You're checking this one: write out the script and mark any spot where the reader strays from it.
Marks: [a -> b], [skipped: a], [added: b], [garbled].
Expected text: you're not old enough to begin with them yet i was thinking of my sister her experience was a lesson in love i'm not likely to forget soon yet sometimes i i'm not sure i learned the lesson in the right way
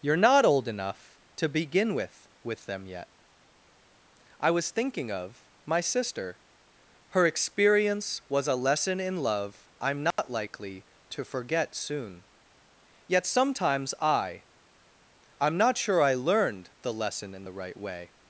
you're not old enough to begin with [added: with] them yet i was thinking of my sister her experience was a lesson in love i'm not likely to forget soon yet sometimes i i'm not sure i learned the lesson in the right way